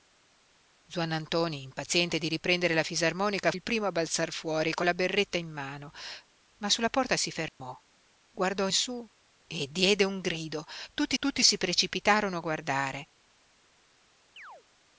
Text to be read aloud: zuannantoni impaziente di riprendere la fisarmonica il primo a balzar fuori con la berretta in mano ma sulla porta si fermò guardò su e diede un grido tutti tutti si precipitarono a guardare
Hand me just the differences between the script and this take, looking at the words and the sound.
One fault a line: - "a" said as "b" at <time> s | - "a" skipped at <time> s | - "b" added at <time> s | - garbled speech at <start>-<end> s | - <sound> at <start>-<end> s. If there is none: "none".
- dropout at 7.5-7.6 s
- chirp at 14.4-14.6 s